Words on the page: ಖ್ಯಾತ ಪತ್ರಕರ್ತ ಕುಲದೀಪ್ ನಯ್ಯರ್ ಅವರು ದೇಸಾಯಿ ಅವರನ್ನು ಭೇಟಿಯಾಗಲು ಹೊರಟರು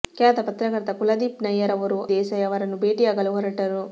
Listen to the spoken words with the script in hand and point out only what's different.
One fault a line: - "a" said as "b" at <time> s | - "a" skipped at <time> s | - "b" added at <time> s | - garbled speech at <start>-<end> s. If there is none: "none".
none